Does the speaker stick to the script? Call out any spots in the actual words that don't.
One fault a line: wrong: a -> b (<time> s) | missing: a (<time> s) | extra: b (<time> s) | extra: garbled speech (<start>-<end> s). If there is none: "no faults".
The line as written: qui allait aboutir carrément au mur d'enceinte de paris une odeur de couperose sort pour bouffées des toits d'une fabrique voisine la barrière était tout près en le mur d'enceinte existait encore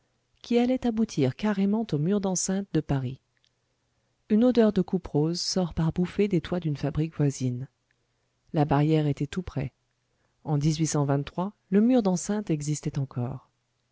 wrong: pour -> par (5.7 s)